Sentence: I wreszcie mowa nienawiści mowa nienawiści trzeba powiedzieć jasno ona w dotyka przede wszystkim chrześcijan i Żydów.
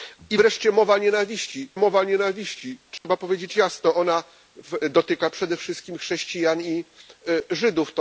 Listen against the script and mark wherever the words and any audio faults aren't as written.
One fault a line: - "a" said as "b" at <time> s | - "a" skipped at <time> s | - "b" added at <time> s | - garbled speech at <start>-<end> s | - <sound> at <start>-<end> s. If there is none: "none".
- dropout at 3.0-3.0 s